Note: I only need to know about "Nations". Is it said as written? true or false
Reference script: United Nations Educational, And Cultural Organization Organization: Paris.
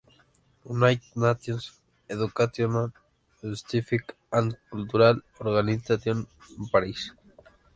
true